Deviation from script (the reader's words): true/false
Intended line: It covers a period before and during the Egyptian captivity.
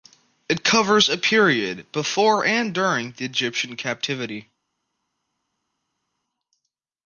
false